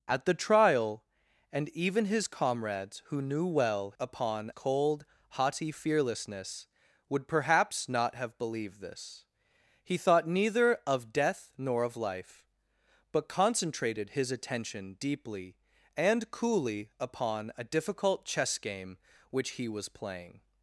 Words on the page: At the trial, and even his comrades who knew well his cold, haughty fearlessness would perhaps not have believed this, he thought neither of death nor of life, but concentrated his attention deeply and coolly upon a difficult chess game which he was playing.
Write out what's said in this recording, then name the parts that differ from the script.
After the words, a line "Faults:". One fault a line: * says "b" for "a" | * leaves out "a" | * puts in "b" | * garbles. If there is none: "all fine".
At the trial, and even his comrades who knew well upon cold, haughty fearlessness would perhaps not have believed this, he thought neither of death nor of life, but concentrated his attention deeply and coolly upon a difficult chess game which he was playing.
Faults:
* says "upon" for "his"